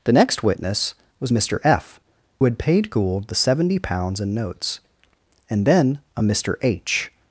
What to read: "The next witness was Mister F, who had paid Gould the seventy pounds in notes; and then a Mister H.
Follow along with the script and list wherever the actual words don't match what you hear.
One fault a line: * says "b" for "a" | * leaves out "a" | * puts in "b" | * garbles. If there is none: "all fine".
* leaves out "who"